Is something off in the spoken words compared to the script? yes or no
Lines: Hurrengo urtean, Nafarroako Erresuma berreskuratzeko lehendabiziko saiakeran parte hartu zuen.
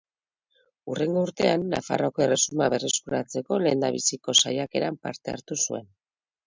no